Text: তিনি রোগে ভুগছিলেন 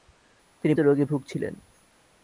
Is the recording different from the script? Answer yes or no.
no